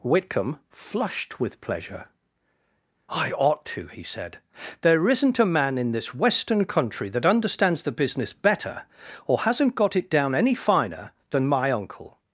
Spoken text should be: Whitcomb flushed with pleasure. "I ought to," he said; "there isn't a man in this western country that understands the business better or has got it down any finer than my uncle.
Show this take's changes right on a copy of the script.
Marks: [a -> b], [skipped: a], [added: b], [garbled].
Whitcomb flushed with pleasure. "I ought to," he said; "there isn't a man in this western country that understands the business better or [has -> hasn't] got it down any finer than my uncle.